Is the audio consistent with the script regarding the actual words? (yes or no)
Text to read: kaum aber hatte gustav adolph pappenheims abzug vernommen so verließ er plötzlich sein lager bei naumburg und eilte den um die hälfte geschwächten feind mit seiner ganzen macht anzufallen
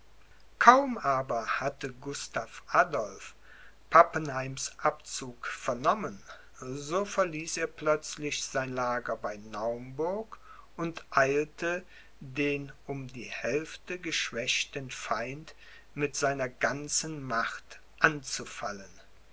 yes